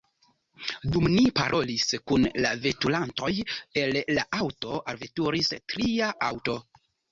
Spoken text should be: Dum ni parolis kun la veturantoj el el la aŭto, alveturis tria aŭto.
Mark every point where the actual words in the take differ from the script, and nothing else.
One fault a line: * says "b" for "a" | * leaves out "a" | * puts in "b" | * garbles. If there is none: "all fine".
* leaves out "el"